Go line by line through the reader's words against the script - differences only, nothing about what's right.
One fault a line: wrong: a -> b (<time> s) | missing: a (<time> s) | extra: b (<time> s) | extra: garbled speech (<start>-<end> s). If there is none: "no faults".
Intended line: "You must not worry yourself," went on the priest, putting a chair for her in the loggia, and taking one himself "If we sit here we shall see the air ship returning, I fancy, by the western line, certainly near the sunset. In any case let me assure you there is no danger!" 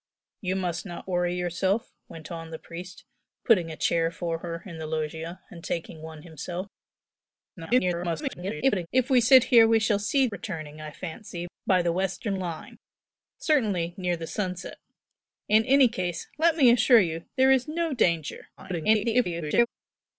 extra: garbled speech (7.6-8.9 s)
missing: the air ship (10.3 s)
extra: garbled speech (18.6-19.7 s)